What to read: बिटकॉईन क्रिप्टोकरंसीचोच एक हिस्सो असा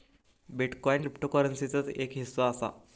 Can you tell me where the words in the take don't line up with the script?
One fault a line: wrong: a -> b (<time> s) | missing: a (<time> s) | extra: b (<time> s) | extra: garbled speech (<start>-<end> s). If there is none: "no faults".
no faults